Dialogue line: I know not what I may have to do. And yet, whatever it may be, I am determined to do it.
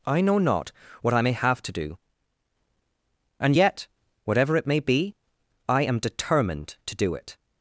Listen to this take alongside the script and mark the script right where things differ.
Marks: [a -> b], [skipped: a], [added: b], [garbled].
I know not what I may have to do. And yet, whatever it may be, I am determined to do it.